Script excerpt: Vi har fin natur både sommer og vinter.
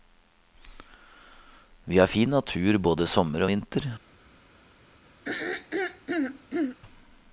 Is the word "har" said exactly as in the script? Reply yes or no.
yes